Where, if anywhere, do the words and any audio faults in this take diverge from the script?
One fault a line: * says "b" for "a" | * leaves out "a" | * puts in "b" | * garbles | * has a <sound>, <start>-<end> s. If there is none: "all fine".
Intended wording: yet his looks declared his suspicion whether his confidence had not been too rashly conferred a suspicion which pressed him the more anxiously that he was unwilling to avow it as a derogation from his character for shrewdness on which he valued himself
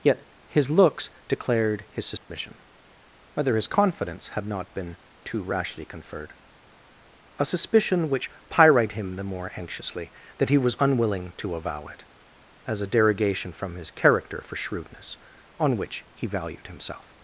* has a dropout, 2.2-2.3 s
* says "pyrite" for "pressed"